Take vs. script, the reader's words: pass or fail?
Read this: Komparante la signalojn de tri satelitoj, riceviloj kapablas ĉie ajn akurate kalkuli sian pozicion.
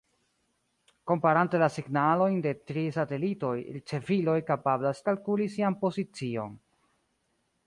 fail